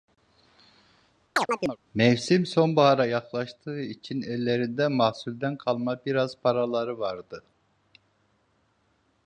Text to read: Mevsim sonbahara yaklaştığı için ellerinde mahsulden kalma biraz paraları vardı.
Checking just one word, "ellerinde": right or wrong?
right